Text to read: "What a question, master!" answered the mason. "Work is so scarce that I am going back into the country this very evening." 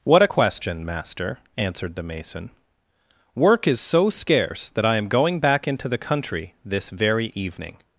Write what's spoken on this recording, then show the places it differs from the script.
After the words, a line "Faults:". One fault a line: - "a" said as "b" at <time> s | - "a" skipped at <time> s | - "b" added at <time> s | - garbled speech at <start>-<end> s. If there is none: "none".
"What a question, master!" answered the mason. "Work is so scarce that I am going back into the country this very evening."
Faults:
none